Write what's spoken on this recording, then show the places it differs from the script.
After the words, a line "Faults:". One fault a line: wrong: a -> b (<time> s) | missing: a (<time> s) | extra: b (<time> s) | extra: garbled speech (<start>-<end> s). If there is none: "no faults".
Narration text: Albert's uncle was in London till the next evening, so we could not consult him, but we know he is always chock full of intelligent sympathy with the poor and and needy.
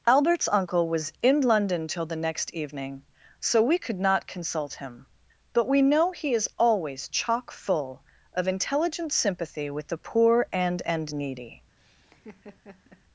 Albert's uncle was in London till the next evening, so we could not consult him, but we know he is always chock full of intelligent sympathy with the poor and and needy.
Faults:
no faults